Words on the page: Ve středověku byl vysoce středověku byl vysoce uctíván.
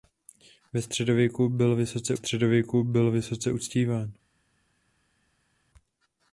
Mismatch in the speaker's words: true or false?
false